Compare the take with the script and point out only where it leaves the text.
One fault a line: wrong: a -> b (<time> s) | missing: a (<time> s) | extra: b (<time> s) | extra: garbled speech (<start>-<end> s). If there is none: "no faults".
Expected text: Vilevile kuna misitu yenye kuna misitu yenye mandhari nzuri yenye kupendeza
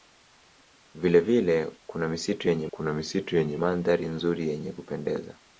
no faults